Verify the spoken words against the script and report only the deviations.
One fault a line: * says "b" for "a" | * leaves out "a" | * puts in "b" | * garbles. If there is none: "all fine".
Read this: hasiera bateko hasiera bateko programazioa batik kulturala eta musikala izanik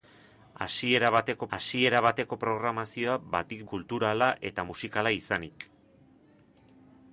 all fine